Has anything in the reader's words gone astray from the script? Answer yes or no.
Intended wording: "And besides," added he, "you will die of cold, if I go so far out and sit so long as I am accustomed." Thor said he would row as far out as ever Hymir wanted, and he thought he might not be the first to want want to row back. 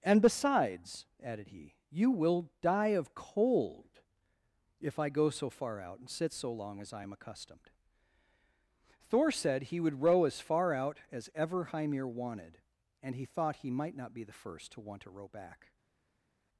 yes